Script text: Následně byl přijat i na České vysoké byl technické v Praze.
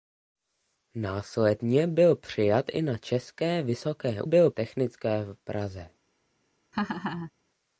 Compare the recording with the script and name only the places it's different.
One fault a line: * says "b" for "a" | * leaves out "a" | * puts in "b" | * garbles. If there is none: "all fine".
all fine